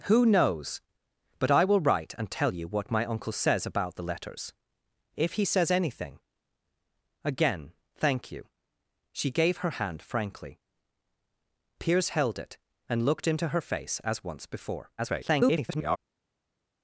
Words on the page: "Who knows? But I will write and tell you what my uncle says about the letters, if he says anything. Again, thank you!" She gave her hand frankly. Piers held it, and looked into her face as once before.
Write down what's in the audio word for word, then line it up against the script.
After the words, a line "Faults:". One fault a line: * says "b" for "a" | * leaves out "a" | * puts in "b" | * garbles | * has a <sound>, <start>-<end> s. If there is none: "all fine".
"Who knows? But I will write and tell you what my uncle says about the letters, if he says anything. Again, thank you!" She gave her hand frankly. Piers held it, and looked into her face as once before. [garbled]
Faults:
* garbles